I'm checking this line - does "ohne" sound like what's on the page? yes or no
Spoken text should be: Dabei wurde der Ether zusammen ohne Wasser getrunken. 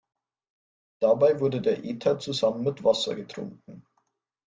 no